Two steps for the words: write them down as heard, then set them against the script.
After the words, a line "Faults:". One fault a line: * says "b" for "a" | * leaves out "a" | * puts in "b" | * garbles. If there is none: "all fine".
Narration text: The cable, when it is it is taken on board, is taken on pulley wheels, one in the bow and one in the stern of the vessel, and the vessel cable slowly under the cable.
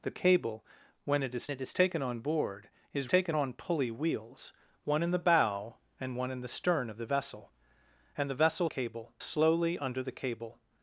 The cable, when it is it is taken on board, is taken on pulley wheels, one in the bow and one in the stern of the vessel, and the vessel cable slowly under the cable.
Faults:
all fine